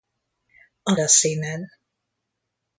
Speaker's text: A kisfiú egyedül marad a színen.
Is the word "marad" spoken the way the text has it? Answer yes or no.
no